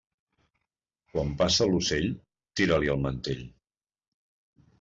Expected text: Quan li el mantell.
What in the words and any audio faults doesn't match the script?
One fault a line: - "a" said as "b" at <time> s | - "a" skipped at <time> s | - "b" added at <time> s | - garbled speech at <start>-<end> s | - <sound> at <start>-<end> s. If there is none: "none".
- "passa l'ocell tira" added at 1.4 s